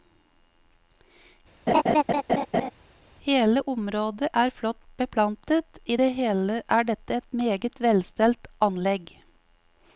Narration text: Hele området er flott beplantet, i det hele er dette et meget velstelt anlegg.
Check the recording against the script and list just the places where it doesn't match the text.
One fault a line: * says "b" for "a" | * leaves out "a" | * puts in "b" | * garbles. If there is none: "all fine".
all fine